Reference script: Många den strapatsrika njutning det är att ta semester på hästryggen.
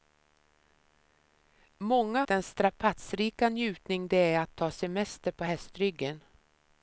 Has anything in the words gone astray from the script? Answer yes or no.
no